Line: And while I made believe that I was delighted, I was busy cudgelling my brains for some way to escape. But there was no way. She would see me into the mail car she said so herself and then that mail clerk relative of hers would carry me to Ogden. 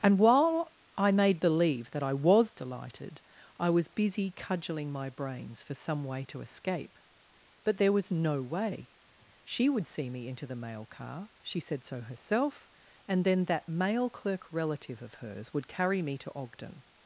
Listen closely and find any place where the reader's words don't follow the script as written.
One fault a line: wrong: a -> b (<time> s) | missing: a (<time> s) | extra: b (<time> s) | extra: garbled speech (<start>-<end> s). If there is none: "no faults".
no faults